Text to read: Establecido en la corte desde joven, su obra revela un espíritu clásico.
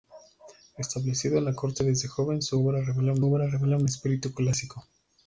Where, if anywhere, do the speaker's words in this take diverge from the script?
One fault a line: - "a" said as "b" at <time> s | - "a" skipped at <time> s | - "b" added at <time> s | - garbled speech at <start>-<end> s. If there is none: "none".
- "obra revela un" added at 3.2 s